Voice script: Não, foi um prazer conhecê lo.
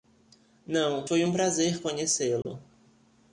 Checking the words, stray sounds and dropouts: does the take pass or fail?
fail